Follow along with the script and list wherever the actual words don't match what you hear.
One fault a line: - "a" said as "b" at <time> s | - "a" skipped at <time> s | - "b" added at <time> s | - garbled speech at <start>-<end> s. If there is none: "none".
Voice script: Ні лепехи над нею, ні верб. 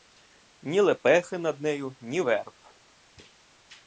none